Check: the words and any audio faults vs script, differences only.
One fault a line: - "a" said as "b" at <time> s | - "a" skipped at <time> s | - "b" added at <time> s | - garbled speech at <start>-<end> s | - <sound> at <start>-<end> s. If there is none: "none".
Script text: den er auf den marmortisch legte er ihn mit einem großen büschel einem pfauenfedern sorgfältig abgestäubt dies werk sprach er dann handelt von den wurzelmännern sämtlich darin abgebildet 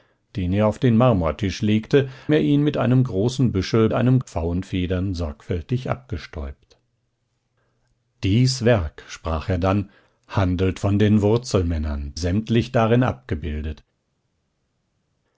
none